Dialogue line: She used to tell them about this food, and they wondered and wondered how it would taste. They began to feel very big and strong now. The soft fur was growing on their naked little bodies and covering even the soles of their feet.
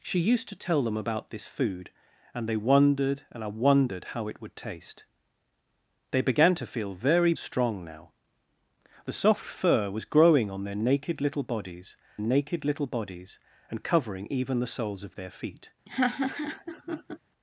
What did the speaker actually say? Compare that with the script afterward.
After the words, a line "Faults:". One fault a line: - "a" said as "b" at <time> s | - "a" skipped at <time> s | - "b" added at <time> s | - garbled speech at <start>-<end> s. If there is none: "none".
She used to tell them about this food, and they wondered and wondered how it would taste. They began to feel very strong now. The soft fur was growing on their naked little bodies naked little bodies and covering even the soles of their feet.
Faults:
- "big and" skipped at 7.3 s
- "naked little bodies" added at 12.2 s